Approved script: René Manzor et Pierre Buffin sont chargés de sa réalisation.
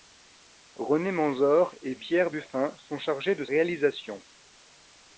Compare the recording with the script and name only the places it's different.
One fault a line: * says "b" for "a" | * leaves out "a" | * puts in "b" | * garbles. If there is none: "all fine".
* leaves out "sa"